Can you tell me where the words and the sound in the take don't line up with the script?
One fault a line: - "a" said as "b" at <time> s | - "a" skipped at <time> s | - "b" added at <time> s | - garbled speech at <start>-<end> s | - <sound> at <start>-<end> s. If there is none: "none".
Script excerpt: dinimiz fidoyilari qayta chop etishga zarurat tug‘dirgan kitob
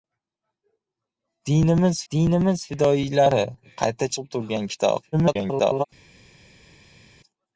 - "dinimiz" added at 2.1 s
- "chop etishga zarurat" skipped at 4.1 s
- garbled speech at 5.1-5.8 s